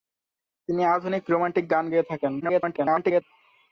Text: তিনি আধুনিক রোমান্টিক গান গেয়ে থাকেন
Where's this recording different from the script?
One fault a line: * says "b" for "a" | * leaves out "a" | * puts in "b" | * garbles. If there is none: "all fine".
* garbles